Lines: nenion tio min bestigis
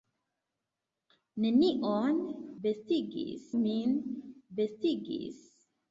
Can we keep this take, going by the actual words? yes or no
no